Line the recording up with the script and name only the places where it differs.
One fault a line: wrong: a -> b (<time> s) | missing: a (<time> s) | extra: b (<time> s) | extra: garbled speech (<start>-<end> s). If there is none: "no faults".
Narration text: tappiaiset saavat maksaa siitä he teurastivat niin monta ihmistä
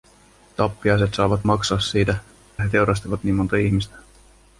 no faults